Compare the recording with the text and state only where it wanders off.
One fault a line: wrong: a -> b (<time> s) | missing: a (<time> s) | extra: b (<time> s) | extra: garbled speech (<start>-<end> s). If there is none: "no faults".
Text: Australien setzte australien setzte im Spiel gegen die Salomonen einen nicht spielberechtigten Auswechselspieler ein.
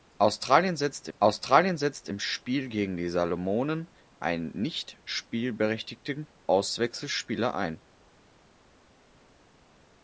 no faults